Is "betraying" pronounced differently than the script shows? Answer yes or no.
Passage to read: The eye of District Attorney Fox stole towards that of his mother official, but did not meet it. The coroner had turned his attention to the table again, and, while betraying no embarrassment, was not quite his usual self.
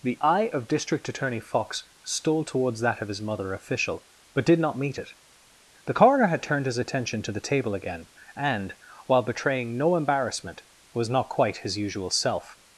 no